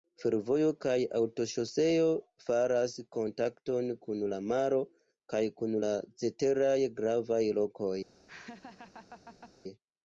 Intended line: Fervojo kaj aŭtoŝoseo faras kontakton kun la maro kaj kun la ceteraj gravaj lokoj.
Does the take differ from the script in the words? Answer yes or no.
no